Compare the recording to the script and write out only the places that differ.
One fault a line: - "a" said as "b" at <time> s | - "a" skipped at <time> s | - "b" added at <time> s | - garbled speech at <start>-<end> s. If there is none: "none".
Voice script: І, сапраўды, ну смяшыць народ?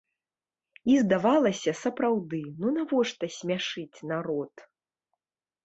- "здавалася" added at 1.0 s
- "навошта" added at 2.8 s